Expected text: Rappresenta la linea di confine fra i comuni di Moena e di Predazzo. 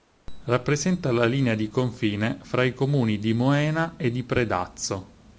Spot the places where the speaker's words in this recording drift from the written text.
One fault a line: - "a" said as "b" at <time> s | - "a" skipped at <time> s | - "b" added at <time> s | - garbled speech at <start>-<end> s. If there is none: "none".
none